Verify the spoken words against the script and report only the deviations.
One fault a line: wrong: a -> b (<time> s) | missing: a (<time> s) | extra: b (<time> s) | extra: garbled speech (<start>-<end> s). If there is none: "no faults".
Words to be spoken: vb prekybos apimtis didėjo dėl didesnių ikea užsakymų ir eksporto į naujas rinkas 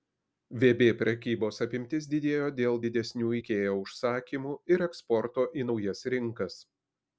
no faults